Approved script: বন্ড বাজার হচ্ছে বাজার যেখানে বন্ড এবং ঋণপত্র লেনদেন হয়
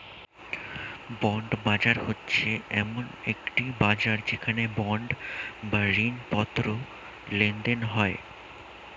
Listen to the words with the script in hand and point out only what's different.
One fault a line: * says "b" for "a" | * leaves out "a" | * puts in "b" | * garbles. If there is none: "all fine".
* puts in "এমন একটি"
* says "বা" for "এবং"